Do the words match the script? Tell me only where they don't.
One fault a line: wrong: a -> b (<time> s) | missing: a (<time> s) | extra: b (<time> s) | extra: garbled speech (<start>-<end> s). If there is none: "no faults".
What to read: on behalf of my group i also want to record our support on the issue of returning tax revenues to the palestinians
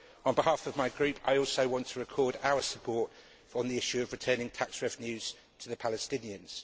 no faults